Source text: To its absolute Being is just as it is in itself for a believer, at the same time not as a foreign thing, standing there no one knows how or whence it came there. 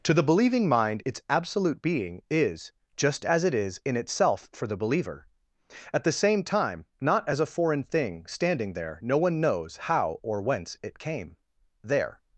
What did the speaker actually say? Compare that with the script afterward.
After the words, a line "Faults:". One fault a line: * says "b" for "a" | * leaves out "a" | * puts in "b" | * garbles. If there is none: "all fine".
To the believing mind its absolute Being is just as it is in itself for the believer, at the same time not as a foreign thing, standing there no one knows how or whence it came there.
Faults:
* puts in "the believing mind"
* says "the" for "a"